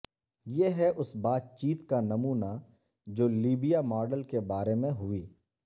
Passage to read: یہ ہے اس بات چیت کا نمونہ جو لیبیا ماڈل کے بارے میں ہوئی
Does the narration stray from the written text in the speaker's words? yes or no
no